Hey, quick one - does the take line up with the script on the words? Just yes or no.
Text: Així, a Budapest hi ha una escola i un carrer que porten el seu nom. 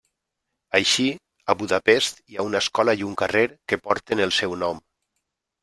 yes